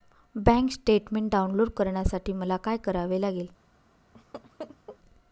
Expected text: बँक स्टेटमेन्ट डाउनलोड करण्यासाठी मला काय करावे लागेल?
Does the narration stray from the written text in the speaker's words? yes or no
no